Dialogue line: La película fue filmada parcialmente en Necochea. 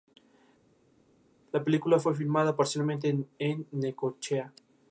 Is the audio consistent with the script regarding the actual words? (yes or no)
yes